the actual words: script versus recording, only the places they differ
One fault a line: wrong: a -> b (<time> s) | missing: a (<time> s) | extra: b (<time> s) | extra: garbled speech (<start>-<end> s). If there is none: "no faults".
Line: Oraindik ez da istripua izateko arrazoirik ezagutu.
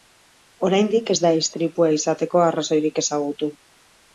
no faults